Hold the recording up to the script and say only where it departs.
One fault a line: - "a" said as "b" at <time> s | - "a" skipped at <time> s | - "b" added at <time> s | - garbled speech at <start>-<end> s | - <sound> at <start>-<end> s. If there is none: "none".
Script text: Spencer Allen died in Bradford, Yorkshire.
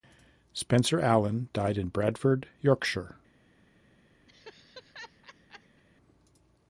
- laugh at 4.3-5.8 s